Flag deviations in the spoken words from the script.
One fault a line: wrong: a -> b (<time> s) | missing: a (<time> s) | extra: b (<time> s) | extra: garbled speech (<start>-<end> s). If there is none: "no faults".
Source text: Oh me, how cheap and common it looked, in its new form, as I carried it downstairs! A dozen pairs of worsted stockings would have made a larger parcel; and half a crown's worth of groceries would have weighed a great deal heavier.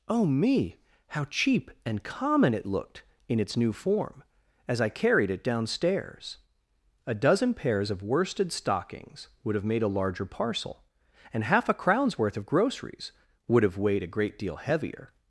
no faults